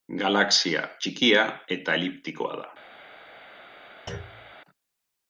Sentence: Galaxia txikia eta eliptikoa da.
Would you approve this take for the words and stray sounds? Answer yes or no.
no